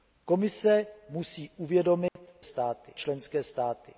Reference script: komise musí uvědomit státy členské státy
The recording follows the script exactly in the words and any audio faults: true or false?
false